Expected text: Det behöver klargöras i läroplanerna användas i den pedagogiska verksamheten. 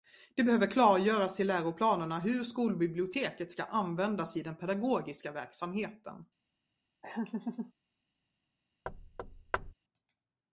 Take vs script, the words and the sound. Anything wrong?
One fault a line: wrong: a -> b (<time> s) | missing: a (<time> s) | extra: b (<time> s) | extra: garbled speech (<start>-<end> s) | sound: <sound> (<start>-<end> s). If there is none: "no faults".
extra: hur skolbiblioteket ska (2.2 s)
sound: laugh (7.0-7.7 s)
sound: thud (8.9-9.7 s)